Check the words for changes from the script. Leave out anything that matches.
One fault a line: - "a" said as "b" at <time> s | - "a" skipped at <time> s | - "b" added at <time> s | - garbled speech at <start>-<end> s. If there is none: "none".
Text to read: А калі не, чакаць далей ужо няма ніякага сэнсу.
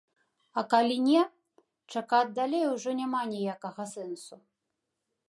none